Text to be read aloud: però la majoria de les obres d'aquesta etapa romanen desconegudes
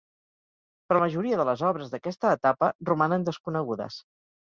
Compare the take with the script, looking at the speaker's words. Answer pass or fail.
fail